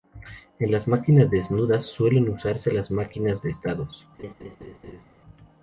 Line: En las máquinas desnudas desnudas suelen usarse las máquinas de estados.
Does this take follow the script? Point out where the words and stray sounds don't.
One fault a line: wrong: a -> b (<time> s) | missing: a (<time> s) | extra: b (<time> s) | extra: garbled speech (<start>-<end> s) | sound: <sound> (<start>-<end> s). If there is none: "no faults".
missing: desnudas (1.8 s)
sound: laugh (4.2-5.0 s)